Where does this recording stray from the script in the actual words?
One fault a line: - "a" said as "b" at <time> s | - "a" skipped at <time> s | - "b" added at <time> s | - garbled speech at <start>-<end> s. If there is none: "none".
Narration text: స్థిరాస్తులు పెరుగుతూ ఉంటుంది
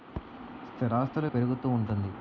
none